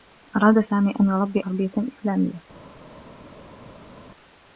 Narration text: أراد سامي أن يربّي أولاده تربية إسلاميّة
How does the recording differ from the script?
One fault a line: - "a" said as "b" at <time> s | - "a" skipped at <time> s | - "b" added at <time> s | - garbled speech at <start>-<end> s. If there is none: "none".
- "أولاده" skipped at 1.4 s